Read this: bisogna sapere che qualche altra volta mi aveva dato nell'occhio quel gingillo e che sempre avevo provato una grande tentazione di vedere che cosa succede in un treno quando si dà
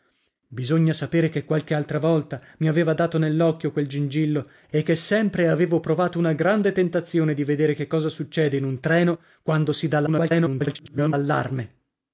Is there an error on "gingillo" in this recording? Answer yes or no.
no